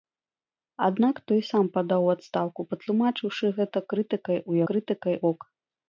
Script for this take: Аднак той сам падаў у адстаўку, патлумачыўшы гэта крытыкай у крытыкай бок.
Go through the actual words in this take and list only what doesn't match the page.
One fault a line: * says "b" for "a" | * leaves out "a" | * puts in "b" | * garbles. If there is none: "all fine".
all fine